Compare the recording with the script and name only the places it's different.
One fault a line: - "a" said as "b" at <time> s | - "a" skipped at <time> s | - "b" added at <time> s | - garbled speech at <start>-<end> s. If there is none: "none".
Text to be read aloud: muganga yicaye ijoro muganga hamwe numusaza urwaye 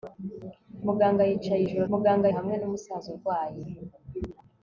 none